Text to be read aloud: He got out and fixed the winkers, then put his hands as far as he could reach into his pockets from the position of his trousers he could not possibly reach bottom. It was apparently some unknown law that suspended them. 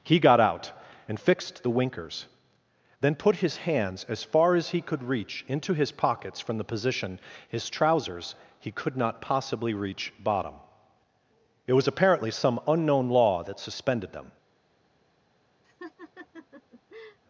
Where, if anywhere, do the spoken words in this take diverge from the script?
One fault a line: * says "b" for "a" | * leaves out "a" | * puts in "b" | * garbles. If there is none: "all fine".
* leaves out "of"